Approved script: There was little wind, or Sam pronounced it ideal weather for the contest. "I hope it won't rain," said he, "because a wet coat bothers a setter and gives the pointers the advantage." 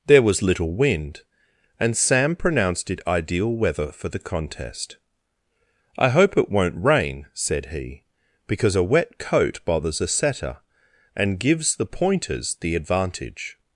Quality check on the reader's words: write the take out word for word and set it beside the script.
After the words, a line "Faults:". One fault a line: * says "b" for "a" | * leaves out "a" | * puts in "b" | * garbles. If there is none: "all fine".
There was little wind, and Sam pronounced it ideal weather for the contest. "I hope it won't rain," said he, "because a wet coat bothers a setter and gives the pointers the advantage."
Faults:
* says "and" for "or"